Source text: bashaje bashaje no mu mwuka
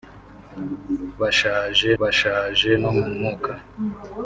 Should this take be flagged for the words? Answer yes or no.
no